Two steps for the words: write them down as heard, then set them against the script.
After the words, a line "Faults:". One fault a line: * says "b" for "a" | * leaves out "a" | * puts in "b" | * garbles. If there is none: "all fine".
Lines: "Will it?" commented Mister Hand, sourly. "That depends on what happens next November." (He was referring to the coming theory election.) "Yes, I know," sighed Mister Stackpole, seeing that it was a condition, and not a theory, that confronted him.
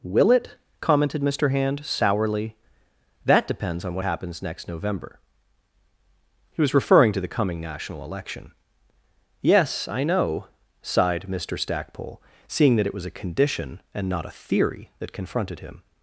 "Will it?" commented Mister Hand, sourly. "That depends on what happens next November." (He was referring to the coming national election.) "Yes, I know," sighed Mister Stackpole, seeing that it was a condition, and not a theory, that confronted him.
Faults:
* says "national" for "theory"